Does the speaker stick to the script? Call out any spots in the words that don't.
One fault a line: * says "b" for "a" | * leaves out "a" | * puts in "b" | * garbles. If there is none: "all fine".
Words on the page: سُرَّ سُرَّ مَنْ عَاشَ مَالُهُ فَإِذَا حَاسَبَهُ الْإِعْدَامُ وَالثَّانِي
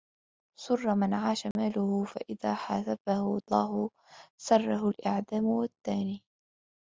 * leaves out "سُرَّ"
* puts in "اللَّهُ سَرَّهُ"